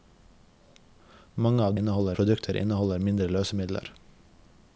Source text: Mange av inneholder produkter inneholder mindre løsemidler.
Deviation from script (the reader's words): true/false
false